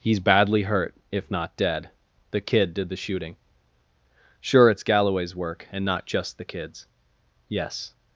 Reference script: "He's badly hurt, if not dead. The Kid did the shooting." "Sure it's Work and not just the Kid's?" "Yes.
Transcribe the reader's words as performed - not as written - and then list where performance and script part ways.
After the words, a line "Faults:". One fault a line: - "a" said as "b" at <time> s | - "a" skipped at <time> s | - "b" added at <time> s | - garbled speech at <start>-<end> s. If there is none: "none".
"He's badly hurt, if not dead. The Kid did the shooting." "Sure it's Galloway's work and not just the Kid's?" "Yes.
Faults:
- "Galloway's" added at 4.8 s